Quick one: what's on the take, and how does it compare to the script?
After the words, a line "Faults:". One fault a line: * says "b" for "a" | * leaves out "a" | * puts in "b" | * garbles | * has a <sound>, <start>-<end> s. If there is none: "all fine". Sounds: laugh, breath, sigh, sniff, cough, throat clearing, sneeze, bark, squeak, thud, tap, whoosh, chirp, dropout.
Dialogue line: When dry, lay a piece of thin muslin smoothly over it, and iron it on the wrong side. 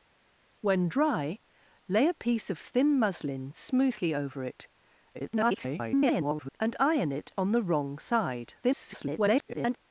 When dry, lay a piece of thin muslin smoothly over it, [garbled] and iron it on the wrong side. [garbled]
Faults:
* garbles
* garbles